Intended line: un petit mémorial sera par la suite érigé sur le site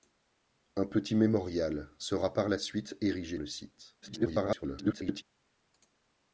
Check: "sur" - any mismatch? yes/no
yes